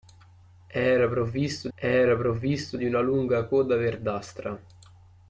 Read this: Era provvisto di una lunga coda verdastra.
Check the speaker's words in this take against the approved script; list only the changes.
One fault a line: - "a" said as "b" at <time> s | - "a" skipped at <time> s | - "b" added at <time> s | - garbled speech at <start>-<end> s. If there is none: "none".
- "era provvisto" added at 1.7 s